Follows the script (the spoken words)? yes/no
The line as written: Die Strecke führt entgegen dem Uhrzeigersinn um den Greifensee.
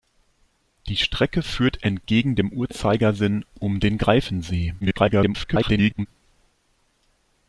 no